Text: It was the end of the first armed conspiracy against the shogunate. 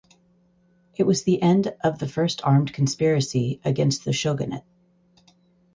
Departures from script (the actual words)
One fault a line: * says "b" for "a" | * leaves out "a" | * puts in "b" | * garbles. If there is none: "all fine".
all fine